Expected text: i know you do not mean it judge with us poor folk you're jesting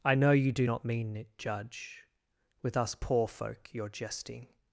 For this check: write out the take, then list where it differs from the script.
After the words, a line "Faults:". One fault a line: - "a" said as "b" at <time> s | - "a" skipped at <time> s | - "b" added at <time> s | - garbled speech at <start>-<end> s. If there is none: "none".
i know you do not mean it judge with us poor folk you're jesting
Faults:
none